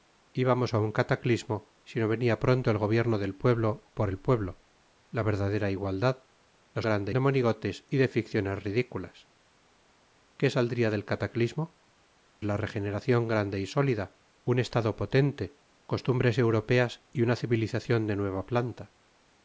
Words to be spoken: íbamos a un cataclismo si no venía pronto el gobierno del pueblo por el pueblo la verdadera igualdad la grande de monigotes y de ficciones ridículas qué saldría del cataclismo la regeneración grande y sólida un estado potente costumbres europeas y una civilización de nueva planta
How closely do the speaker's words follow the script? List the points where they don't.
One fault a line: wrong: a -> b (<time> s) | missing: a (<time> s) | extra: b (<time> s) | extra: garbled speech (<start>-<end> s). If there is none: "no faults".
no faults